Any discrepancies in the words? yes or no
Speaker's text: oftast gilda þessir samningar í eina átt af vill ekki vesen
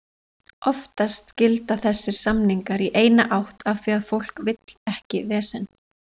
yes